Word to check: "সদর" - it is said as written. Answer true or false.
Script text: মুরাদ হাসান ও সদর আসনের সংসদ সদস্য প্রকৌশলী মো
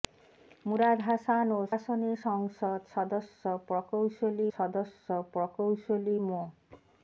false